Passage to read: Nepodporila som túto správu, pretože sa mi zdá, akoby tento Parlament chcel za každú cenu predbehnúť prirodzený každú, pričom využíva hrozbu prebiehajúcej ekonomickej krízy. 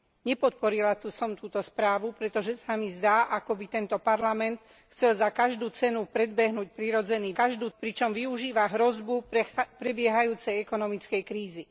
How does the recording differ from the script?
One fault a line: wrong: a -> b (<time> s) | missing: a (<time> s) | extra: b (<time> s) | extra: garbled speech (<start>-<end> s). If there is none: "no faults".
no faults